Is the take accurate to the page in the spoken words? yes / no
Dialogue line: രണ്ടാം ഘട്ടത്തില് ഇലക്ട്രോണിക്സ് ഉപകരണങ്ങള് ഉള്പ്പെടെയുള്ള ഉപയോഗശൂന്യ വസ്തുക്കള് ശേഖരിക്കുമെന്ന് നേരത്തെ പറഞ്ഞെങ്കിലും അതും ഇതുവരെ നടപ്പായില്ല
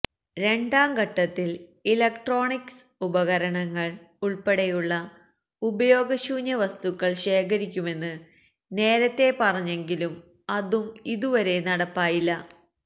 yes